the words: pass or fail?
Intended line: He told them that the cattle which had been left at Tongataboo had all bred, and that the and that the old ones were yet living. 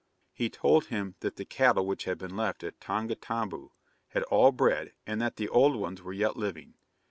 fail